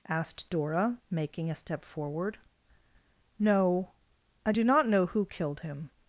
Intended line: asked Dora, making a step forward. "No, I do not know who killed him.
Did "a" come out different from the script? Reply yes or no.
no